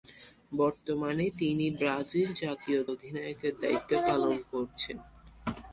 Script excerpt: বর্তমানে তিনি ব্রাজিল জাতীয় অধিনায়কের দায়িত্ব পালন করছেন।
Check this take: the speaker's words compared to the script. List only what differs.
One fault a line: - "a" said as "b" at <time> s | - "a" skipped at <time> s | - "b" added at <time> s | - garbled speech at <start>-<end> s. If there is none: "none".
none